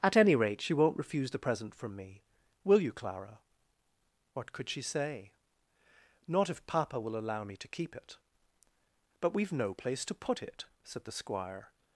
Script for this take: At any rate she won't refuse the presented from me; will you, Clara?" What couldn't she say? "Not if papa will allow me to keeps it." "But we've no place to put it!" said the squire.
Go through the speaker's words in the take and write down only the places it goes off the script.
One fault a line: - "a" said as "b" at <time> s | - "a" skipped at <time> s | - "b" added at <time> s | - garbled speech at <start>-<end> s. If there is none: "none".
- "presented" said as "present" at 1.4 s
- "couldn't" said as "could" at 4.5 s
- "keeps" said as "keep" at 7.7 s